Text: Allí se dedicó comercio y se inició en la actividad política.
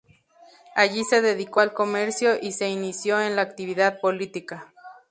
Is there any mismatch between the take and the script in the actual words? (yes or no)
yes